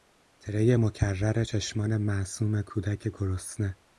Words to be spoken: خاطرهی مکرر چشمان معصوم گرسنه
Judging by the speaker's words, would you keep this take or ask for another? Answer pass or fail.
fail